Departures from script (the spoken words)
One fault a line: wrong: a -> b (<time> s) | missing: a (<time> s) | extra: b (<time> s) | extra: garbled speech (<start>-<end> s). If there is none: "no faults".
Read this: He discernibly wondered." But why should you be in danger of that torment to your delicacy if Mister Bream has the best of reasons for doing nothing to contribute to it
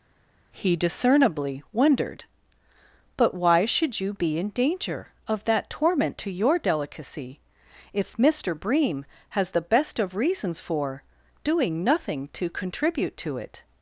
no faults